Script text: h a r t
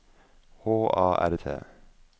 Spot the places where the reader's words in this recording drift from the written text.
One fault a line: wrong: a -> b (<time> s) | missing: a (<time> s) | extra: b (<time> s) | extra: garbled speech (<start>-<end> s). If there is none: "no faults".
no faults